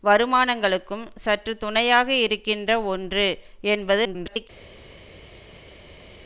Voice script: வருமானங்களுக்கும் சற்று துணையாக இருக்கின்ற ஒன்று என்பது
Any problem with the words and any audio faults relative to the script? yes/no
yes